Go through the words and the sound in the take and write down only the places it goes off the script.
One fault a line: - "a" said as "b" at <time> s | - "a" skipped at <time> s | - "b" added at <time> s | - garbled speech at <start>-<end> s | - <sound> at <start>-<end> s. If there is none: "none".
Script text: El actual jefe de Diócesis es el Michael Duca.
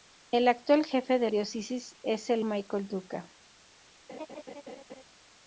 - laugh at 4.1-5.0 s